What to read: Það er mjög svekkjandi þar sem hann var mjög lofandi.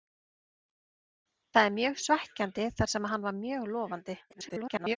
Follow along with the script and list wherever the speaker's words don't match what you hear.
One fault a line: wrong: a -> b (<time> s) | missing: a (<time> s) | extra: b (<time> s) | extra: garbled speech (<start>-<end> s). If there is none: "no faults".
extra: garbled speech (4.3-5.0 s)